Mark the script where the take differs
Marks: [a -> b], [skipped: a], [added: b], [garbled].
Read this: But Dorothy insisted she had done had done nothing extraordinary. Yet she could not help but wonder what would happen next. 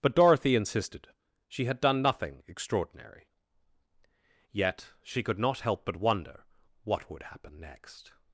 But Dorothy insisted she had done [skipped: had done] nothing extraordinary. Yet she could not help but wonder what would happen next.